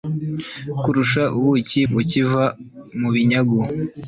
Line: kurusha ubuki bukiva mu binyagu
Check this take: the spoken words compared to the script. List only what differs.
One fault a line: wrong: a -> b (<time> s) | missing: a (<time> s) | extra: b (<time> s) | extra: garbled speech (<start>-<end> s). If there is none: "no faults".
no faults